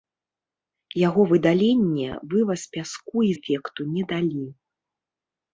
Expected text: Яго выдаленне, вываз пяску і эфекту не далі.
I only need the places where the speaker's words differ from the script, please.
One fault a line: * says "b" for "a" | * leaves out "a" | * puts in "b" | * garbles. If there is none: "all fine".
all fine